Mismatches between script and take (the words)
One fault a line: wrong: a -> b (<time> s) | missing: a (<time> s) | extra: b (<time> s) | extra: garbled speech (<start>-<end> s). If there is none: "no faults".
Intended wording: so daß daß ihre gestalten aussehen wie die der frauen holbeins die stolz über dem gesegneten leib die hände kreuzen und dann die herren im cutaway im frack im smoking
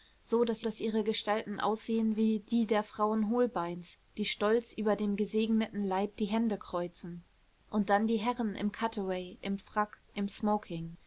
no faults